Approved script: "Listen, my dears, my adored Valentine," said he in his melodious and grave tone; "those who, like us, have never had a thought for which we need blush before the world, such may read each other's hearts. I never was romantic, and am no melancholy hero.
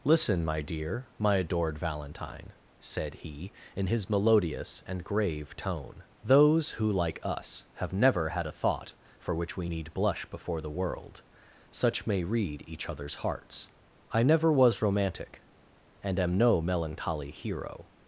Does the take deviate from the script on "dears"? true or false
true